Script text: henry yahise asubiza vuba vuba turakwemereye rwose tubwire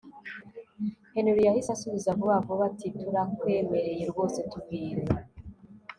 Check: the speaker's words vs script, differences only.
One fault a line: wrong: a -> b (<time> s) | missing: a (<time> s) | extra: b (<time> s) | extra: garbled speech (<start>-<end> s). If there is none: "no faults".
extra: ati (2.7 s)